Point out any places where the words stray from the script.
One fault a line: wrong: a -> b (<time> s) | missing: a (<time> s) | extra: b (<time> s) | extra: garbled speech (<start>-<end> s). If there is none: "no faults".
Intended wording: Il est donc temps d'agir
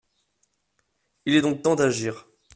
no faults